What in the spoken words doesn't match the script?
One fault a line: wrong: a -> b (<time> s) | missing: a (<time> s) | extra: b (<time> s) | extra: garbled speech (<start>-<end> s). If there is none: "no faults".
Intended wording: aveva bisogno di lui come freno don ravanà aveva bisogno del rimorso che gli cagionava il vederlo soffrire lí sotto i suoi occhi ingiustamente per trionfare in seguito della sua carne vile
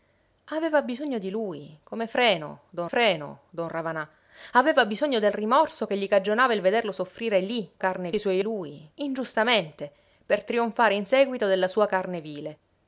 extra: freno don (2.9 s)
wrong: sotto -> carne (7.8 s)
wrong: occhi -> lui (8.4 s)